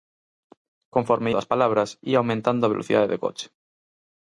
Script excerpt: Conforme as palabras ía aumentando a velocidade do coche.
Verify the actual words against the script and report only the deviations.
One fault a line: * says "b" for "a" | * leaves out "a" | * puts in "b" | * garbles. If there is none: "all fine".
all fine